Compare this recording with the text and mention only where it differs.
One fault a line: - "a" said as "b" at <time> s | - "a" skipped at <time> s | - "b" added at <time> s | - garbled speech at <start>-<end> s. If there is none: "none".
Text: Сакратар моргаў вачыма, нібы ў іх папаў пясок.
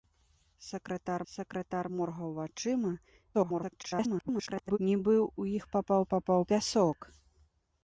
- "сакратар" added at 1.3 s
- garbled speech at 3.3-4.8 s
- "папаў" added at 6.1 s